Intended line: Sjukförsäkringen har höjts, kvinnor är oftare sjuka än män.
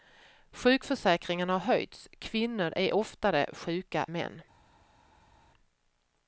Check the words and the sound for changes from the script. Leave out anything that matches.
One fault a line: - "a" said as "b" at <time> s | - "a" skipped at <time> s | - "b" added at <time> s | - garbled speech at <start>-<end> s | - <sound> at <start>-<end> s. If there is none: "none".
- "än" skipped at 4.0 s